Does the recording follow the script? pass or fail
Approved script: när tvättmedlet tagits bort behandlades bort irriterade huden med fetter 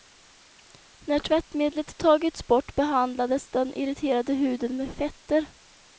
fail